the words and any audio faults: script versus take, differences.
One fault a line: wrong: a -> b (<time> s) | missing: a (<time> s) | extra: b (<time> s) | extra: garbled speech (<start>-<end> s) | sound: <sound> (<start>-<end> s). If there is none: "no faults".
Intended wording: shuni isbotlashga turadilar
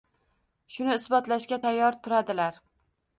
extra: tayyor (1.7 s)